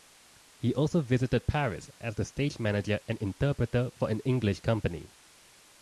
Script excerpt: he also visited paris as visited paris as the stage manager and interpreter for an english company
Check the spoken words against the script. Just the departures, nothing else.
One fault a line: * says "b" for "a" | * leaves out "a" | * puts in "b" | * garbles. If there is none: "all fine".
* leaves out "visited paris as"